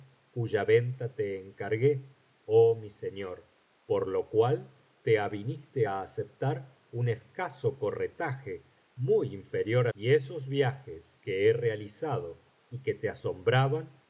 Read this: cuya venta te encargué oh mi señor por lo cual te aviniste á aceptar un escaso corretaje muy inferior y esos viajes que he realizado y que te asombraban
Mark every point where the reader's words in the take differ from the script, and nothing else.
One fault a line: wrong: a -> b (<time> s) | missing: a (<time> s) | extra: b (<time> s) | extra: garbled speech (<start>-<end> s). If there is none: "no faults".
no faults